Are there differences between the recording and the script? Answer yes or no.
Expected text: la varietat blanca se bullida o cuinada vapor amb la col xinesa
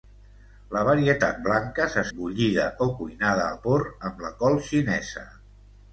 no